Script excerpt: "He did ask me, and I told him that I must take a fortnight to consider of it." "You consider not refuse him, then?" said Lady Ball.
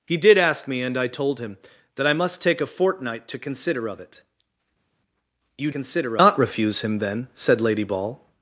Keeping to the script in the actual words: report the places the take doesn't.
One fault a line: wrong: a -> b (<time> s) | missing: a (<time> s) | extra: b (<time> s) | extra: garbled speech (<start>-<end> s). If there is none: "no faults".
no faults